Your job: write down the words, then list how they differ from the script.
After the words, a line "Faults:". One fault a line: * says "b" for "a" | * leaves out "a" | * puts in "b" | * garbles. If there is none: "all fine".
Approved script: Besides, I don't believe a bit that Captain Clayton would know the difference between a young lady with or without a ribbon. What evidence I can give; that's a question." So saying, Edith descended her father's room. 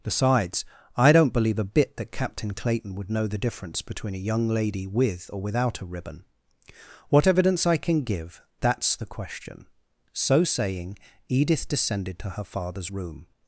Besides, I don't believe a bit that Captain Clayton would know the difference between a young lady with or without a ribbon. What evidence I can give; that's the question." So saying, Edith descended to her father's room.
Faults:
* says "the" for "a"
* puts in "to"